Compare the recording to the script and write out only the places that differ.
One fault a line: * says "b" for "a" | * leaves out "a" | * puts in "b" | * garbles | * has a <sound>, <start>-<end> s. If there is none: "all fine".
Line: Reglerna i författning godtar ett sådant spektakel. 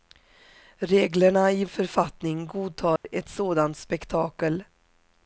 * has a dropout, 3.0-3.0 s